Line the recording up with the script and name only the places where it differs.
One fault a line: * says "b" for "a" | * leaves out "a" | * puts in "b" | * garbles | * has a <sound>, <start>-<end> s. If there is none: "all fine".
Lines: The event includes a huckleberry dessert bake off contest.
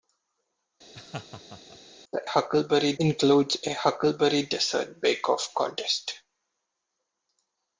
* has a laugh, 0.9-1.8 s
* says "huckleberry" for "event"